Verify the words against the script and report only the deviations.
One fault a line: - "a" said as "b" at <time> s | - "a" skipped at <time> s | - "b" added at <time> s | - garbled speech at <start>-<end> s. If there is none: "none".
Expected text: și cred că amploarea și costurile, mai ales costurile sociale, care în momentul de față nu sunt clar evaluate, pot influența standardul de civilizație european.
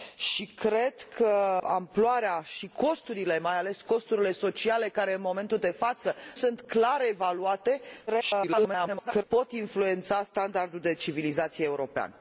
- "nu" skipped at 6.2 s
- garbled speech at 8.1-9.2 s